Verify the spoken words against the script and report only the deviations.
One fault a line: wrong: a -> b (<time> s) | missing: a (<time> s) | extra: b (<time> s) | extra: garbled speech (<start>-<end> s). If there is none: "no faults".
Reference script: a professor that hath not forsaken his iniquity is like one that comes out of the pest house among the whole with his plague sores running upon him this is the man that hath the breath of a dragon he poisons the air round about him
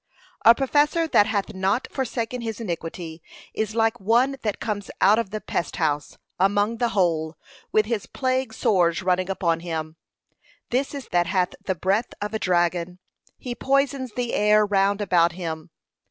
missing: the man (11.1 s)